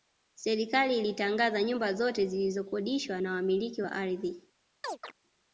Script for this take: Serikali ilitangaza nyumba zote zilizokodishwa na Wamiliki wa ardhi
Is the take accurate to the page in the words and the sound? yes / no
no